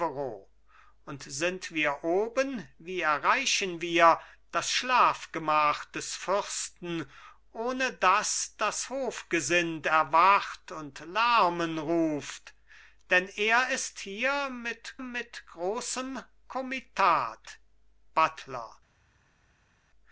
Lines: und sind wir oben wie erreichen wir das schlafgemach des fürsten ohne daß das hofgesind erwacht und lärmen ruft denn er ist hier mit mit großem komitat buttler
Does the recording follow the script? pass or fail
pass